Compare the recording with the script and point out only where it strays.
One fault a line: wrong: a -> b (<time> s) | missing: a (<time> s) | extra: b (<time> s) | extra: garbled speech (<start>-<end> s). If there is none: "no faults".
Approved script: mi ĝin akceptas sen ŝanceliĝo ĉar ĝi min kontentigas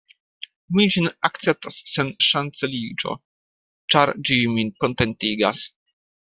no faults